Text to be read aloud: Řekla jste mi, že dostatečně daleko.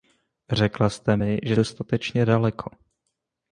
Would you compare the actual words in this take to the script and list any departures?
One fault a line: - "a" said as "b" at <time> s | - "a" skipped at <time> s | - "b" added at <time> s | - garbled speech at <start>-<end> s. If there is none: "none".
none